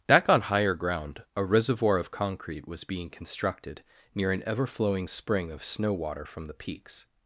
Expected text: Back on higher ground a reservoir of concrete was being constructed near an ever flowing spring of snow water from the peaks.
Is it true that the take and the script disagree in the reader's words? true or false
false